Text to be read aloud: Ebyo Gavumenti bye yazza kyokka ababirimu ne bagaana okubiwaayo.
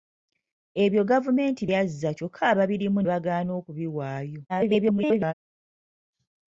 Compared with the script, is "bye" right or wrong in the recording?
wrong